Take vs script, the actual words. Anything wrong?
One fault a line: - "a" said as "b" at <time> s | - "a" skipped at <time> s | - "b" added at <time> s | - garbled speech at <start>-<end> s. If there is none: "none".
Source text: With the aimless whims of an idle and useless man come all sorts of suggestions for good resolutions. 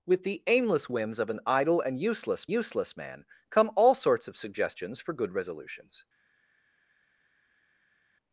- "useless" added at 2.5 s